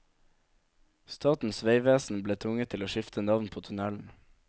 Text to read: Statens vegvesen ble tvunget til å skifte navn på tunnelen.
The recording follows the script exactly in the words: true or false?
true